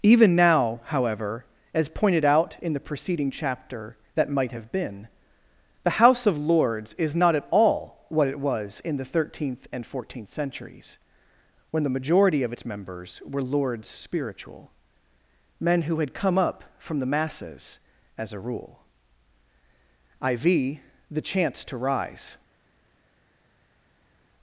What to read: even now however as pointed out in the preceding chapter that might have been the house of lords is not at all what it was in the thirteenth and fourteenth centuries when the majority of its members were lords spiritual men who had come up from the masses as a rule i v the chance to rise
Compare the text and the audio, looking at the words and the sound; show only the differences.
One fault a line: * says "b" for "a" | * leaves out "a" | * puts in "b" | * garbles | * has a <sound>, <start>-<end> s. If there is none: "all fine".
all fine